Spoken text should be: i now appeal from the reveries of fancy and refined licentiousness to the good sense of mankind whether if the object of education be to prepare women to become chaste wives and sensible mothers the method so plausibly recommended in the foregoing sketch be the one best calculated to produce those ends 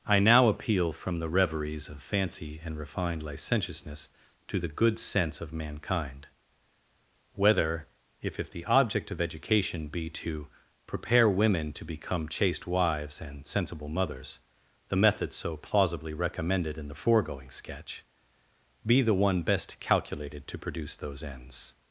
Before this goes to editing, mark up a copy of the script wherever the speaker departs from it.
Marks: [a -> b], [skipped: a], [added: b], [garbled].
i now appeal from the reveries of fancy and refined licentiousness to the good sense of mankind whether if [added: if] the object of education be to prepare women to become chaste wives and sensible mothers the method so plausibly recommended in the foregoing sketch be the one best calculated to produce those ends